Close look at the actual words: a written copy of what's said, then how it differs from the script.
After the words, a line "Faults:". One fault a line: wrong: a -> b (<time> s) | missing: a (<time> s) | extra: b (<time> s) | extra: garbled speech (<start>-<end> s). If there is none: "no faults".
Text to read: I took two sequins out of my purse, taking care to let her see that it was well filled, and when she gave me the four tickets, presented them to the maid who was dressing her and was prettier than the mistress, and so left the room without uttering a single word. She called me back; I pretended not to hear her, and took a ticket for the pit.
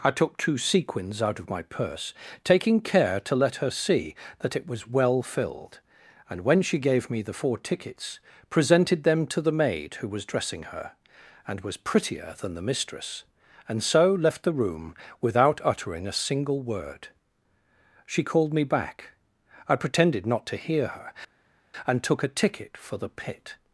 I took two sequins out of my purse, taking care to let her see that it was well filled, and when she gave me the four tickets, presented them to the maid who was dressing her and was prettier than the mistress, and so left the room without uttering a single word. She called me back; I pretended not to hear her, and took a ticket for the pit.
Faults:
no faults